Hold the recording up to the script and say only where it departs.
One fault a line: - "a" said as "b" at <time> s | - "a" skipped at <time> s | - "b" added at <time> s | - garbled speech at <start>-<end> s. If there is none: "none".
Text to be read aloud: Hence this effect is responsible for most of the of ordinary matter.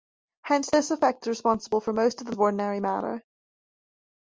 none